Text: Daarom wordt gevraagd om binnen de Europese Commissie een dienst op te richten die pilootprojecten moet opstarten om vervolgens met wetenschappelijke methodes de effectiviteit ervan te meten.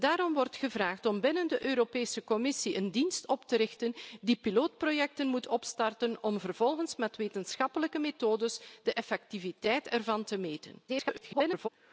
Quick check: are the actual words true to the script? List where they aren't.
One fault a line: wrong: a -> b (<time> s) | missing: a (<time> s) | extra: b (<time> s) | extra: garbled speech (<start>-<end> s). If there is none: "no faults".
extra: garbled speech (10.9-11.7 s)